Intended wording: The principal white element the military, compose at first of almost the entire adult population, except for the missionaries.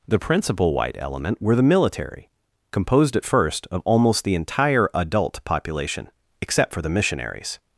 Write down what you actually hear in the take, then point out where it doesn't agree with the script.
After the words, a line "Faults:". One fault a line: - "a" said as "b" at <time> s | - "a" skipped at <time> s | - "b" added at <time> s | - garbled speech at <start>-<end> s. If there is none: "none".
The principal white element were the military, composed at first of almost the entire adult population, except for the missionaries.
Faults:
- "were" added at 1.4 s
- "compose" said as "composed" at 2.7 s